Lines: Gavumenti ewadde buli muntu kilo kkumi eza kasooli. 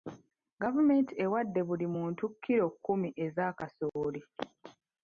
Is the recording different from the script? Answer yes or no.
no